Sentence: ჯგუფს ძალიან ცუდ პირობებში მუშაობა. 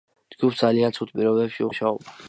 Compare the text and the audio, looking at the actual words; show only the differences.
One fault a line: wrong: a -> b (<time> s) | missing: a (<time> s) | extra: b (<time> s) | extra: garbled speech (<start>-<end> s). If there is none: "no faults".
no faults